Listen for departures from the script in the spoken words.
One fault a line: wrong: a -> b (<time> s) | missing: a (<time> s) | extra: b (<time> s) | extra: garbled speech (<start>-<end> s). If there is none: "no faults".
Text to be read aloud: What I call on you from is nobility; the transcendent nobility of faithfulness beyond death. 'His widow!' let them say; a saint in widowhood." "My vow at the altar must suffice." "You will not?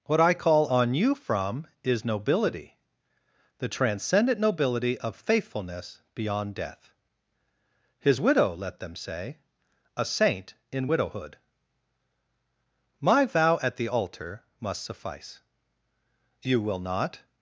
no faults